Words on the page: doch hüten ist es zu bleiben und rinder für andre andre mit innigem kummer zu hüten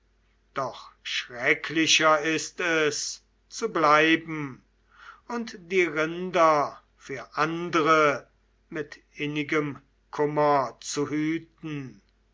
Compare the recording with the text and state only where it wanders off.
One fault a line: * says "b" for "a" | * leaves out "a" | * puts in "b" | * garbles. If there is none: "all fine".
* says "schrecklicher" for "hüten"
* puts in "die"
* leaves out "andre"